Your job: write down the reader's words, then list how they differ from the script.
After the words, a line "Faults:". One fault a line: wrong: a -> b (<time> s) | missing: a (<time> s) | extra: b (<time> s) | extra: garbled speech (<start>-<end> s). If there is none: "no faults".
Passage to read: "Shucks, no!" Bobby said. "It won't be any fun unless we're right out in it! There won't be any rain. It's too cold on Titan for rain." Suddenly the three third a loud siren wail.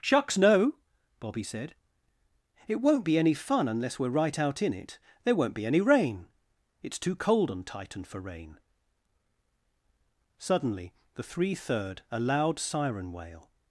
"Shucks, no!" Bobby said. "It won't be any fun unless we're right out in it! There won't be any rain. It's too cold on Titan for rain." Suddenly the three third a loud siren wail.
Faults:
no faults